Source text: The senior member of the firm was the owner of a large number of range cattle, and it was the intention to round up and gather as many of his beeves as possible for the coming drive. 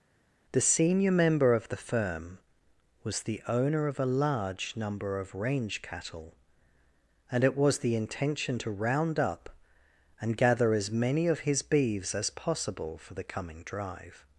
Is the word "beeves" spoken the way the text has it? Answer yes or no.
yes